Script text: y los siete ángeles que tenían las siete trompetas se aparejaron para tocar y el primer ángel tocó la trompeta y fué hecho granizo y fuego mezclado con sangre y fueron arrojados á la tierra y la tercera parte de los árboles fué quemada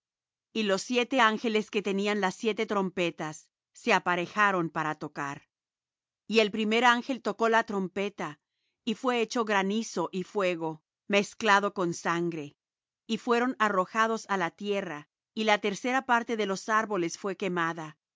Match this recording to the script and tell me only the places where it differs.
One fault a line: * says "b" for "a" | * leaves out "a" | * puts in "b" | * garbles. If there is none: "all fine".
all fine